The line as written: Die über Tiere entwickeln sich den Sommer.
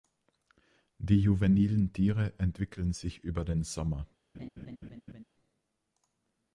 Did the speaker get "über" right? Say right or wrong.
wrong